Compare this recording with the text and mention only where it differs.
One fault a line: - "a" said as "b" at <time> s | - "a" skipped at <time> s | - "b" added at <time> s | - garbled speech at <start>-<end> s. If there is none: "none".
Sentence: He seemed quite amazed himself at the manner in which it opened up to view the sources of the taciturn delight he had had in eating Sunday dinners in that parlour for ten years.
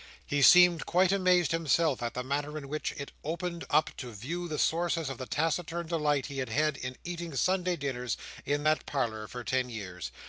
none